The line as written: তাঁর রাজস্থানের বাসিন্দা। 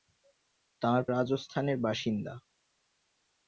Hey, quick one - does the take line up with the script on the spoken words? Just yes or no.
yes